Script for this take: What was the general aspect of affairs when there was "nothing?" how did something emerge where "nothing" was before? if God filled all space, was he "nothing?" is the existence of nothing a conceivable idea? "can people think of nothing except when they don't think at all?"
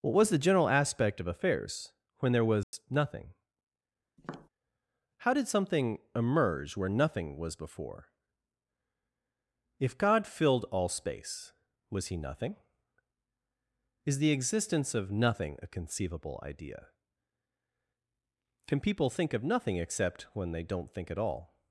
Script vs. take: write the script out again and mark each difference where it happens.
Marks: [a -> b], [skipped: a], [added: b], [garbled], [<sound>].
What was the general aspect of affairs when there was [dropout] "nothing?" [tap] how did something emerge where "nothing" was before? if God filled all space, was he "nothing?" is the existence of nothing a conceivable idea? "can people think of nothing except when they don't think at all?"